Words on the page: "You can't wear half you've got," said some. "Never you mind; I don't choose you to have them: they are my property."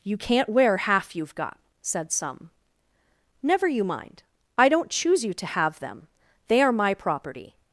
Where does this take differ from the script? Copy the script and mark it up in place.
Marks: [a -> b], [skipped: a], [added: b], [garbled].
"You can't wear half you've got," said some. "Never you mind; I don't choose you to have them: they are my property."